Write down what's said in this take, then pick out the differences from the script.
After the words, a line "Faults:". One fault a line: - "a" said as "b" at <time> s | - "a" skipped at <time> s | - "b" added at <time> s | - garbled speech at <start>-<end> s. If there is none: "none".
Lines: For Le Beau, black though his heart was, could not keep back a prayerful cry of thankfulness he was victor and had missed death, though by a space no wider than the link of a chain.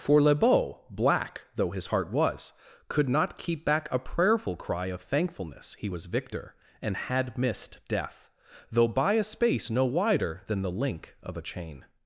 For Le Beau, black though his heart was, could not keep back a prayerful cry of thankfulness he was victor and had missed death, though by a space no wider than the link of a chain.
Faults:
none